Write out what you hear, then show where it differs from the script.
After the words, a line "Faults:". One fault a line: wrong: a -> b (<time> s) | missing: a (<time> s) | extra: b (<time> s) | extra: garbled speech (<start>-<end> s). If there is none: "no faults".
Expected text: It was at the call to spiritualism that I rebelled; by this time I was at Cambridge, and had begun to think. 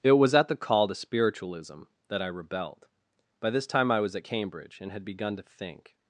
It was at the call to spiritualism that I rebelled; by this time I was at Cambridge, and had begun to think.
Faults:
no faults